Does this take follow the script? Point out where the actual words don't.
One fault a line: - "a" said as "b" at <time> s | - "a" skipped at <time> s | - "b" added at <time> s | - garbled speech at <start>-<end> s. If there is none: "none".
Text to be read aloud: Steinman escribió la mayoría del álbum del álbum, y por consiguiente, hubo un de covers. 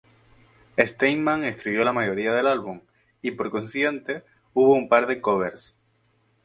- "del álbum" skipped at 2.8 s
- "par" added at 4.9 s